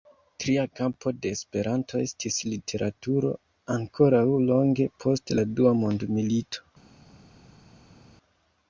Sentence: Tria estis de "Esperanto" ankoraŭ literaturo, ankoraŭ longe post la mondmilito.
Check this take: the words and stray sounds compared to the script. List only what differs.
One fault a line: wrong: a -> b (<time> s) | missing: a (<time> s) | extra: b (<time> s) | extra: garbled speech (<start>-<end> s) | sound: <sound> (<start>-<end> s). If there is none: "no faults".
wrong: estis -> kampo (0.8 s)
wrong: ankoraŭ -> estis (2.1 s)
extra: dua (5.6 s)